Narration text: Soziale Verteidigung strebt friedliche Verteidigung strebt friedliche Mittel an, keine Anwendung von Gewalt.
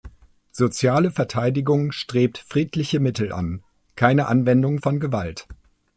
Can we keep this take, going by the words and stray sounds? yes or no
no